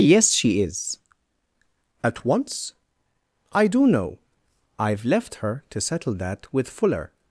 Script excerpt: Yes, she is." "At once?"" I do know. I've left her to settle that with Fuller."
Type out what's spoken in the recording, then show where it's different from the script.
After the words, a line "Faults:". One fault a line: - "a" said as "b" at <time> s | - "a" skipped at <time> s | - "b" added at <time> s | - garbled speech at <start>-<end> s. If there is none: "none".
Yes, she is." "At once?"" I do know. I've left her to settle that with Fuller."
Faults:
none